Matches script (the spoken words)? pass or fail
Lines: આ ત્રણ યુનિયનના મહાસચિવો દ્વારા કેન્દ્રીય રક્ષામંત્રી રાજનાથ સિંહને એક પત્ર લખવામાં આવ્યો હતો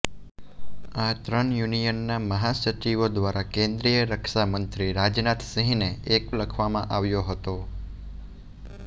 fail